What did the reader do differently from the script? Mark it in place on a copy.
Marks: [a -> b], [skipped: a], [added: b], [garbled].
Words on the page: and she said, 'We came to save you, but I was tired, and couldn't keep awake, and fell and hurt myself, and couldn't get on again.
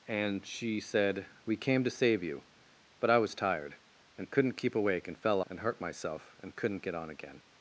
and she said, 'We came to save you, but I was tired, and couldn't keep awake, and fell and hurt myself, and couldn't get on again.